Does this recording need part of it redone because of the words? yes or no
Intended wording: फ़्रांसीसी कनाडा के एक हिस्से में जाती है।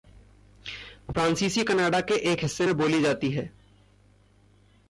yes